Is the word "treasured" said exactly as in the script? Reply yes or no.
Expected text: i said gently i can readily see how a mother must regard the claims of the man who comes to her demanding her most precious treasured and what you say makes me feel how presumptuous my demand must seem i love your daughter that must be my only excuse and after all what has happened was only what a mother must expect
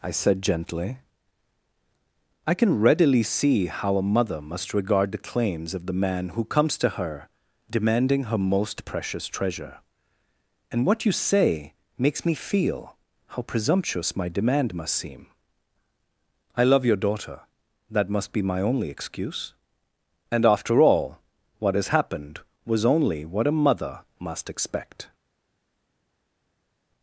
no